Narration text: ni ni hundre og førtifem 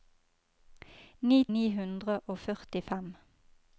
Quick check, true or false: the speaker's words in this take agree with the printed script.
true